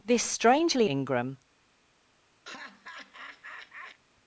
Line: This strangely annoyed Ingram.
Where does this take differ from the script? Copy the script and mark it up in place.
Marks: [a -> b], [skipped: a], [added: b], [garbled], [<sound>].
This strangely [skipped: annoyed] Ingram. [laugh]